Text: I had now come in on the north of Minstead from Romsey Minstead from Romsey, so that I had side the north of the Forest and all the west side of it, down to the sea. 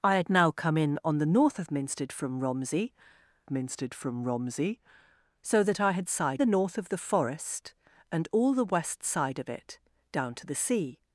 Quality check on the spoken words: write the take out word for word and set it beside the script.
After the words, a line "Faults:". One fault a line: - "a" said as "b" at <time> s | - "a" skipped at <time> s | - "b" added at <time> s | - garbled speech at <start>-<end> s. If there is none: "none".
I had now come in on the north of Minstead from Romsey Minstead from Romsey, so that I had side the north of the Forest and all the west side of it, down to the sea.
Faults:
none